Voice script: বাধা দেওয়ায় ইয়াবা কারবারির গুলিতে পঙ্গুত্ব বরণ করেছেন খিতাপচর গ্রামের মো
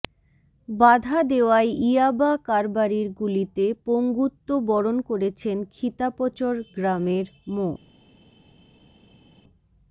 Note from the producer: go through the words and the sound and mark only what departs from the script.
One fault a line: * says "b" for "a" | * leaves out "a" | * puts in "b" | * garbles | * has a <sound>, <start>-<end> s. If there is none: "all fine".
all fine